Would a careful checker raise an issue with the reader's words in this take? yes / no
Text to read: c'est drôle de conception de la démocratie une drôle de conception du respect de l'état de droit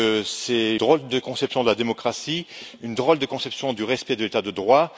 no